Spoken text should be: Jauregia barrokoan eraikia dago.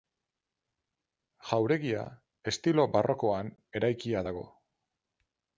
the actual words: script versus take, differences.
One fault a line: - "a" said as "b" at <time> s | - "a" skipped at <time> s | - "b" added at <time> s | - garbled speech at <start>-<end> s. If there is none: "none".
- "estilo" added at 2.5 s